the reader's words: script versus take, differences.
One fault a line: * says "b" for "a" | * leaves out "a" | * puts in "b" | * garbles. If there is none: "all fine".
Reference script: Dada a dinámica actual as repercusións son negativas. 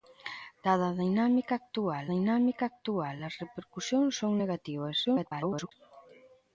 * puts in "dinámica actual"
* garbles